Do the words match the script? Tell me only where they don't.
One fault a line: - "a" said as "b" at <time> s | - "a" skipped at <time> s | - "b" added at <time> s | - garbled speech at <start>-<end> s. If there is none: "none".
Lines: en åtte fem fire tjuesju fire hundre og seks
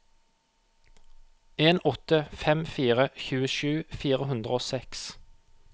none